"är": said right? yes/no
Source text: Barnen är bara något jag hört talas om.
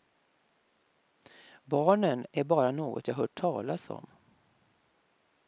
yes